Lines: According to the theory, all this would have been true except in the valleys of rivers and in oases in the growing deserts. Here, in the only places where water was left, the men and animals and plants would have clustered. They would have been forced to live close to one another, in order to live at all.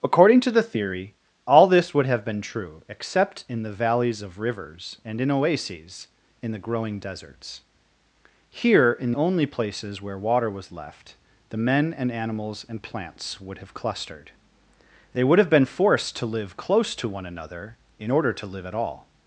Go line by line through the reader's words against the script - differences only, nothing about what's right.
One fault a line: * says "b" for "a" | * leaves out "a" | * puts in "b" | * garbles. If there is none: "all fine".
* leaves out "the"